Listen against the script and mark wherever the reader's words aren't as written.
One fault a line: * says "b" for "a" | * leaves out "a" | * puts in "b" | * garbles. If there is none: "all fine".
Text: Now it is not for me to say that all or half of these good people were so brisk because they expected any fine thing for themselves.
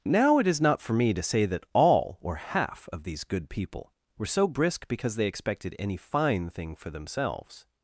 all fine